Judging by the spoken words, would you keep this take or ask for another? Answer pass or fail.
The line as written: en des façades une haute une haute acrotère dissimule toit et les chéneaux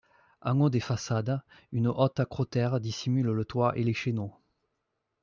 fail